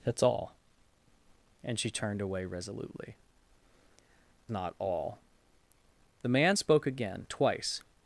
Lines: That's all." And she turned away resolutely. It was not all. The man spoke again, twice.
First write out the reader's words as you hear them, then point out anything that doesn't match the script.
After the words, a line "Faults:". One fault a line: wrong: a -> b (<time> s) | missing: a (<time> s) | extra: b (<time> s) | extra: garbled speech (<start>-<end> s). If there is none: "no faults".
That's all." And she turned away resolutely. Not all. The man spoke again, twice.
Faults:
missing: It was (3.2 s)